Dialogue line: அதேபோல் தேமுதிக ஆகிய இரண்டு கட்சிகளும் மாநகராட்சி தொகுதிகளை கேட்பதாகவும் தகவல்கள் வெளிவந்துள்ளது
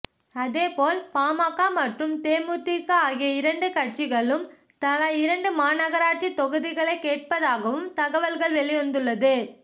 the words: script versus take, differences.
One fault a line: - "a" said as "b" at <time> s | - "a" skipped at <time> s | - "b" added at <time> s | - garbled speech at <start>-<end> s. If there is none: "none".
- "பாமக மற்றும்" added at 1.1 s
- "தலா இரண்டு" added at 4.8 s